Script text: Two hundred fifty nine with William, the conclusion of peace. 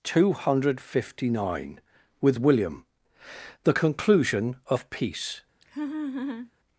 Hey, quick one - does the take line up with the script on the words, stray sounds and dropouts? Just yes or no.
no